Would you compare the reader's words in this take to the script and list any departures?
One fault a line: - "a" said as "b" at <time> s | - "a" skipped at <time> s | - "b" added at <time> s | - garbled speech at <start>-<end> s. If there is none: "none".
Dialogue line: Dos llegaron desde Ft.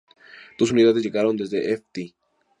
- "unidades" added at 0.7 s